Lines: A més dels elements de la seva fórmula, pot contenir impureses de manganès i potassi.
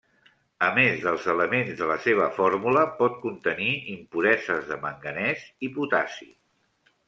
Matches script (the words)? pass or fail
pass